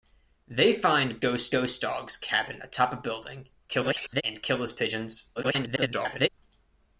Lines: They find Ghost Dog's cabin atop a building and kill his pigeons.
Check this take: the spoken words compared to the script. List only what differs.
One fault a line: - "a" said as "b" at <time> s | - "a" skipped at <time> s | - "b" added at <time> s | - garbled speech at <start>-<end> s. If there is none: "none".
- "Ghost" added at 1.5 s
- garbled speech at 3.7-4.2 s
- garbled speech at 5.4-6.3 s